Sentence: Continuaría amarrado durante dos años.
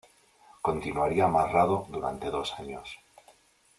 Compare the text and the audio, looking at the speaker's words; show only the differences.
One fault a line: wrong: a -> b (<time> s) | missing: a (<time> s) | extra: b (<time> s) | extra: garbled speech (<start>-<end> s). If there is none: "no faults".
no faults